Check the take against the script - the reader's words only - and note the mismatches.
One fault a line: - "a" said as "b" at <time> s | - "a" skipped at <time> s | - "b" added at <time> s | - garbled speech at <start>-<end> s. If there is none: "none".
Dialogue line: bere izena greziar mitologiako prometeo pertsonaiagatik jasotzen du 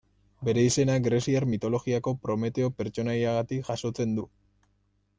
none